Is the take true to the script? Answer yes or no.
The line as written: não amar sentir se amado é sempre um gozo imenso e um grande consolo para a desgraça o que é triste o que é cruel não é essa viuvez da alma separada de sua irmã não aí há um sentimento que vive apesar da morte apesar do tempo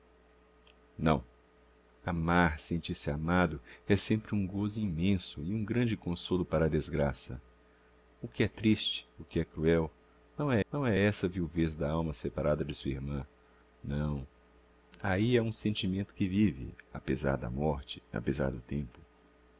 no